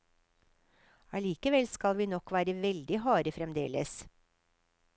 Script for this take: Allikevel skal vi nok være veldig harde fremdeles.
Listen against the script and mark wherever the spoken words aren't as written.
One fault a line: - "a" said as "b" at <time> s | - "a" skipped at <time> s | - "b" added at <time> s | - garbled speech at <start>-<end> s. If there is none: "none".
none